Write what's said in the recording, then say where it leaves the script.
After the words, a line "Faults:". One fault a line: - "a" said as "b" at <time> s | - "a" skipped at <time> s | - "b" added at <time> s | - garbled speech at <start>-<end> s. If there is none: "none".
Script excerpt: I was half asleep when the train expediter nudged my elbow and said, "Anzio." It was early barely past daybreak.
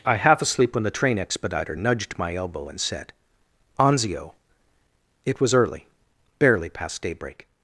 I half asleep when the train expediter nudged my elbow and said, "Anzio." It was early barely past daybreak.
Faults:
- "was" skipped at 0.1 s